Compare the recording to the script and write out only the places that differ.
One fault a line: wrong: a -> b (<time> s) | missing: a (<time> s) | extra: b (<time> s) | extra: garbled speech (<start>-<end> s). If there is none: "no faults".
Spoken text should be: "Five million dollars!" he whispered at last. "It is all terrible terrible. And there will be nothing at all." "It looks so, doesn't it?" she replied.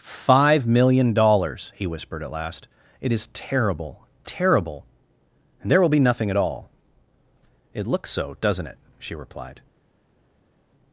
missing: all (3.3 s)